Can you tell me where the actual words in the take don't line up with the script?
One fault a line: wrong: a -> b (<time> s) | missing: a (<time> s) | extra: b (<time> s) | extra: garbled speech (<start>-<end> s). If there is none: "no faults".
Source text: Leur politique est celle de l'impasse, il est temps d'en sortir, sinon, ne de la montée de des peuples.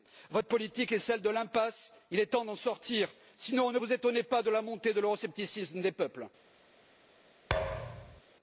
wrong: Leur -> Votre (0.3 s)
extra: vous étonnez pas (3.8 s)
extra: l'euroscepticisme (5.0 s)